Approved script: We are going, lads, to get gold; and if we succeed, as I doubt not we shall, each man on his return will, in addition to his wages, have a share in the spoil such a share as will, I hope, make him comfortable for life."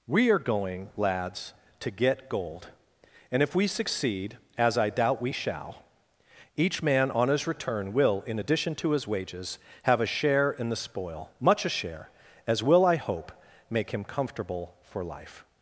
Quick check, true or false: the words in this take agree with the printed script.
false